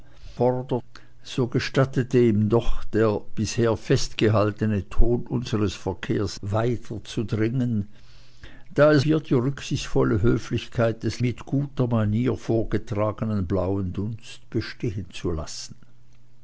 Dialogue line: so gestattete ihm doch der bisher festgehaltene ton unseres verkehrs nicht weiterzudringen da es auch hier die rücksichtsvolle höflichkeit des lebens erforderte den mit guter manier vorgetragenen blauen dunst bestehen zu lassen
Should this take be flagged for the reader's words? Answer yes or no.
yes